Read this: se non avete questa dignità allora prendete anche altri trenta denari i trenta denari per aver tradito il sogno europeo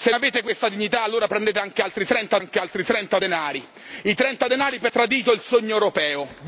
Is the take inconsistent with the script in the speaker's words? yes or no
yes